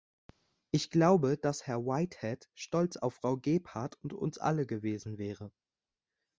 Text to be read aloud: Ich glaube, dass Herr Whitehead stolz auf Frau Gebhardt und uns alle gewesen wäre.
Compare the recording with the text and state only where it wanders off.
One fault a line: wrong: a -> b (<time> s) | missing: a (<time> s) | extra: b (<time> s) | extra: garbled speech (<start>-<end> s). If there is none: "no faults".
no faults